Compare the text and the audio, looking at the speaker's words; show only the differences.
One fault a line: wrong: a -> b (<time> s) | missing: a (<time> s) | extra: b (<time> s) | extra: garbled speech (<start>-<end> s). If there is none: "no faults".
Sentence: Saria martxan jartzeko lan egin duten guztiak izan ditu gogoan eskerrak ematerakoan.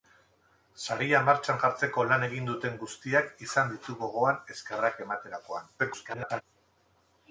extra: garbled speech (5.8-6.4 s)